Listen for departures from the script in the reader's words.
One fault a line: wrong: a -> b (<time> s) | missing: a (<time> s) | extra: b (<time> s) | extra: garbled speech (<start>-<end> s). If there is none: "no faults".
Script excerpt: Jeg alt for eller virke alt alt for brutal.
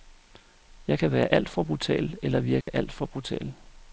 extra: kan være (1.0 s)
extra: brutal (1.6 s)
missing: alt (2.9 s)